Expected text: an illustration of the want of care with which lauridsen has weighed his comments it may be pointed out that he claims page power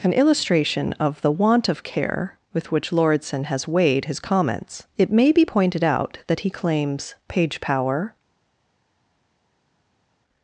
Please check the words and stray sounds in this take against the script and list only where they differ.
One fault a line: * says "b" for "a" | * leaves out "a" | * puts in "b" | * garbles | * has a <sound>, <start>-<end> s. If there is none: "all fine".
all fine